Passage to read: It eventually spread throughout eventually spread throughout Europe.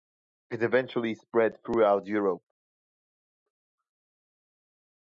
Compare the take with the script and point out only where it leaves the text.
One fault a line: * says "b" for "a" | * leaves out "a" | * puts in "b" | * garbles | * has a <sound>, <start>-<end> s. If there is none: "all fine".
* leaves out "eventually spread throughout"